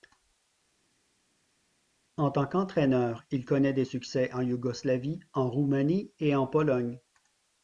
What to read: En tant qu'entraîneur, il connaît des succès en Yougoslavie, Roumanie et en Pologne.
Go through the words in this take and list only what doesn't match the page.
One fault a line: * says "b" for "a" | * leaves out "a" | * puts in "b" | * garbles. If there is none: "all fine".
* puts in "en"